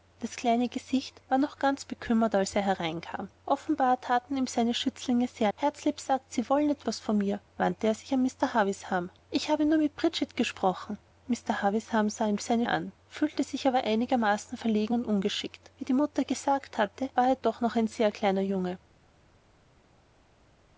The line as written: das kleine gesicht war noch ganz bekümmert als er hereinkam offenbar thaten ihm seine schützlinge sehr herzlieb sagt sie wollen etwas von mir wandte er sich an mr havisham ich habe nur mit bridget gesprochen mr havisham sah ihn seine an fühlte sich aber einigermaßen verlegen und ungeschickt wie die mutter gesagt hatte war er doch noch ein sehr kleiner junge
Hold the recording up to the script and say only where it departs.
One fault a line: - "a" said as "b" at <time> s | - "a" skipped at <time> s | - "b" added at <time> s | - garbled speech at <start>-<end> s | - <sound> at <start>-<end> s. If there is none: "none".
none